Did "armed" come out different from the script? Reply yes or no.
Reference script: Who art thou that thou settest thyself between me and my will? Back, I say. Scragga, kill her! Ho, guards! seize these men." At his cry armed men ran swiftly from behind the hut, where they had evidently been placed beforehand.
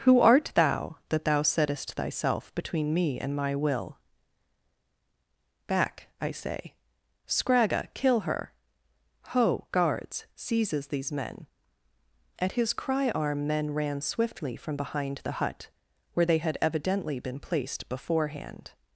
yes